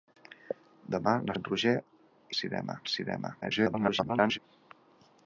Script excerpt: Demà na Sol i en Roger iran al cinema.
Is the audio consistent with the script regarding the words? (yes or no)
no